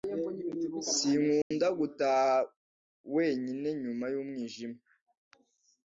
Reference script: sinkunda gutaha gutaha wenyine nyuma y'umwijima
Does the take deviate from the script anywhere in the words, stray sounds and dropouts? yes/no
yes